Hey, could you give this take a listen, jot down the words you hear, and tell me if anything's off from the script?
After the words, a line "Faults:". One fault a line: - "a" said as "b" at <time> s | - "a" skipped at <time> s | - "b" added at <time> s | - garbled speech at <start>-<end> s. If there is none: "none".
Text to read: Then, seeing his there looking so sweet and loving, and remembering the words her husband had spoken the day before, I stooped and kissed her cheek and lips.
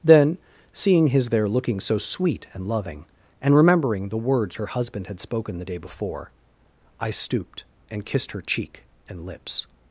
Then, seeing his there looking so sweet and loving, and remembering the words her husband had spoken the day before, I stooped and kissed her cheek and lips.
Faults:
none